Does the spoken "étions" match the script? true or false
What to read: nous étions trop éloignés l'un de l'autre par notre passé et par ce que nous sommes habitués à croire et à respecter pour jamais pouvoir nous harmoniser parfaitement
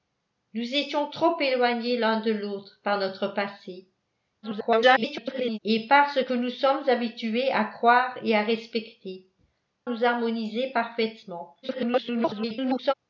true